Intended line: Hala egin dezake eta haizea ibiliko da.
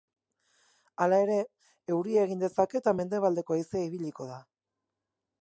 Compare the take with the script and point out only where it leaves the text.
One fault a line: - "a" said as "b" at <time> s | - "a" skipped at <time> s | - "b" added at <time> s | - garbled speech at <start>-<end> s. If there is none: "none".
- "ere euria" added at 1.2 s
- "mendebaldeko" added at 3.0 s